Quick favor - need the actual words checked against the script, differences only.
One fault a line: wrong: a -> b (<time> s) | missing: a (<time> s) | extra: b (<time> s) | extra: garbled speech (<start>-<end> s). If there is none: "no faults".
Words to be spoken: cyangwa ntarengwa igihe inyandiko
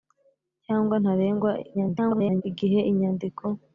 extra: garbled speech (1.7-2.4 s)